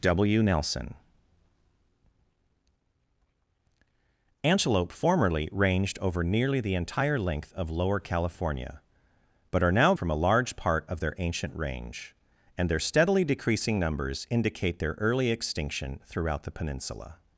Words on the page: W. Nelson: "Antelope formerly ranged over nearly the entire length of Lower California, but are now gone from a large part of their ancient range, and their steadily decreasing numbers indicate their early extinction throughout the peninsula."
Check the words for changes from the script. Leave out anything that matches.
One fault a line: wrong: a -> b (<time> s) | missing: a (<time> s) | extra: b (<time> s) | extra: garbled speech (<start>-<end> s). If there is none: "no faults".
missing: gone (9.9 s)